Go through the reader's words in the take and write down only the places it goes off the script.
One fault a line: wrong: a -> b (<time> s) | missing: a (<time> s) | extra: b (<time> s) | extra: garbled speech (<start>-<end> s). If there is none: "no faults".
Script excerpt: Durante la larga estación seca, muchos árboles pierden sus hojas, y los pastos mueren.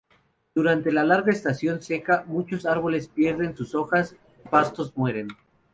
missing: los (4.5 s)